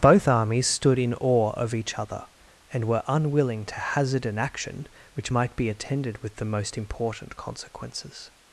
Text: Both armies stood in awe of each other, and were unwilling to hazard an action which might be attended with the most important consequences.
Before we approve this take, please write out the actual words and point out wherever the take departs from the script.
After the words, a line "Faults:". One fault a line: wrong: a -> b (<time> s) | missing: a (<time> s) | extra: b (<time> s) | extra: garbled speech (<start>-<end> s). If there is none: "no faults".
Both armies stood in awe of each other, and were unwilling to hazard an action which might be attended with the most important consequences.
Faults:
no faults